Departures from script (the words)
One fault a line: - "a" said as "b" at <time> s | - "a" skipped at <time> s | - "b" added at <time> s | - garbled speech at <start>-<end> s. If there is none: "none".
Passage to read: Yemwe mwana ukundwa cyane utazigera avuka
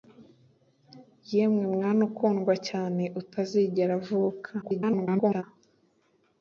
- garbled speech at 4.6-5.4 s